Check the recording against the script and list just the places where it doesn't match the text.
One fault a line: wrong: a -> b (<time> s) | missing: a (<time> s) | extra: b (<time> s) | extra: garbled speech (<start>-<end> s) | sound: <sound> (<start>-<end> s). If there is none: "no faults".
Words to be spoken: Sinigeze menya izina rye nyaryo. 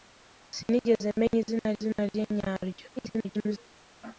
extra: izina (1.8 s)
extra: garbled speech (3.0-3.6 s)